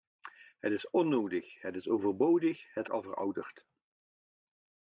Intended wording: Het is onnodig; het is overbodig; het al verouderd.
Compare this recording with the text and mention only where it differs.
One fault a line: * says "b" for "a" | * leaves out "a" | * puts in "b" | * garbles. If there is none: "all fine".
all fine